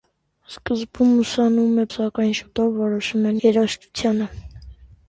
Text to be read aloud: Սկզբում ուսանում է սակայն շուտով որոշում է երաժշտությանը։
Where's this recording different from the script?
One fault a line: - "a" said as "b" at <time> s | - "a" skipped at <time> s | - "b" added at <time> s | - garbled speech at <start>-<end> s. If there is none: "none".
none